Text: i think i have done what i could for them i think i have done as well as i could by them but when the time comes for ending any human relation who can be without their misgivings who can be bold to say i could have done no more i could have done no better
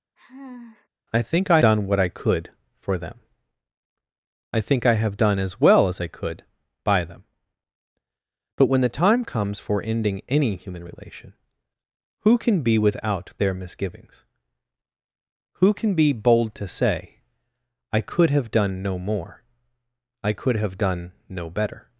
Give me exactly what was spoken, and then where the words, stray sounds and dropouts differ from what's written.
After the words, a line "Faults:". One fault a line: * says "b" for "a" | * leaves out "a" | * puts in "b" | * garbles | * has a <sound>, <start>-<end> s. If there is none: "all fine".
i think i done what i could for them i think i have done as well as i could by them but when the time comes for ending any human relation who can be without their misgivings who can be bold to say i could have done no more i could have done no better
Faults:
* has a sigh, 0.2-0.9 s
* leaves out "have"